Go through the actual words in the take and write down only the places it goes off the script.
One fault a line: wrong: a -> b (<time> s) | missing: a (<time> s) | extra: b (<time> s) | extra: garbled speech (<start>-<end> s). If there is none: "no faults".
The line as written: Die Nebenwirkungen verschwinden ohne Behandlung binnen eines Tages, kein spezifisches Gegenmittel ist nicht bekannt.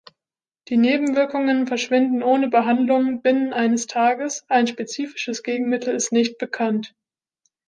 wrong: kein -> ein (4.5 s)